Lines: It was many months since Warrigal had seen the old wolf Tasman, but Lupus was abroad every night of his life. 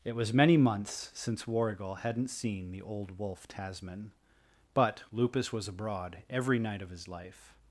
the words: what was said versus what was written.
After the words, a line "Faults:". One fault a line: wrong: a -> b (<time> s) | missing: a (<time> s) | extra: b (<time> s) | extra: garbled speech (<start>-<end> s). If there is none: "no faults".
It was many months since Warrigal hadn't seen the old wolf Tasman, but Lupus was abroad every night of his life.
Faults:
wrong: had -> hadn't (1.9 s)